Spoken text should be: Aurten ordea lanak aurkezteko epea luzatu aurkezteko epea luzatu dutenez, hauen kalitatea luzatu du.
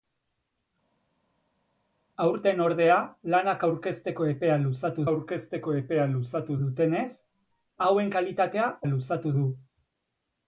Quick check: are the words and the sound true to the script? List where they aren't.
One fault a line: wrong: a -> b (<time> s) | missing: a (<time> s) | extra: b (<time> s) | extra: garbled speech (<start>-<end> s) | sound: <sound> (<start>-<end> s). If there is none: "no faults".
no faults